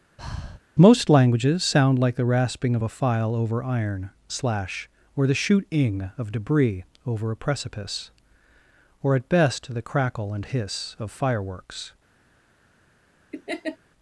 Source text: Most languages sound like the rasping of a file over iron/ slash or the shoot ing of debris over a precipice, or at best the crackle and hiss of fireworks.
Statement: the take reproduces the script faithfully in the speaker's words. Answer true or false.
true